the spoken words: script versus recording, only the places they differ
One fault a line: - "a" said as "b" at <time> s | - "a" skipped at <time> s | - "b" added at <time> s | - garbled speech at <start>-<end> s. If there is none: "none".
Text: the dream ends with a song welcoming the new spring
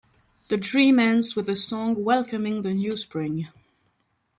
none